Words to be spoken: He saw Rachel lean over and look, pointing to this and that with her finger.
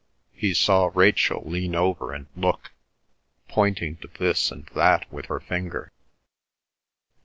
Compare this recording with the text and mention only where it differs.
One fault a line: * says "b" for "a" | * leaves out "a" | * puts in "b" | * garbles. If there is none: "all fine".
all fine